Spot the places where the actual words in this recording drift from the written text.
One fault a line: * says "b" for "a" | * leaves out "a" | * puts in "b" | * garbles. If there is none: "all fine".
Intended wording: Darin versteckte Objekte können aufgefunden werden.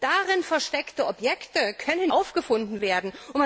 all fine